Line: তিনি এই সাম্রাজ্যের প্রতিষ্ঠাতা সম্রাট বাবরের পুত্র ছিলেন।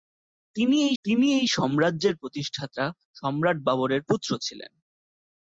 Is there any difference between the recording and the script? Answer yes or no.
yes